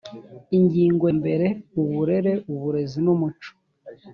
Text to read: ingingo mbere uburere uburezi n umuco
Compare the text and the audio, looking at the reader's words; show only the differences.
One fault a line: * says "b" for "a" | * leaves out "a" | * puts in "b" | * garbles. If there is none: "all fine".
all fine